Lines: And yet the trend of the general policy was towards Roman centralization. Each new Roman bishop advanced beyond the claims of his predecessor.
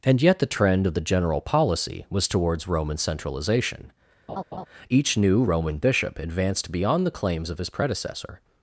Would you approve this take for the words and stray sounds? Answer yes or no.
no